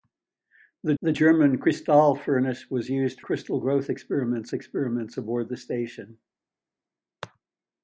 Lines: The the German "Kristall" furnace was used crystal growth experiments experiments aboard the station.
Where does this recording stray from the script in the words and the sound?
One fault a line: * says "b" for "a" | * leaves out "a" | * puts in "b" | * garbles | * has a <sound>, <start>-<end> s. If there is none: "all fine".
all fine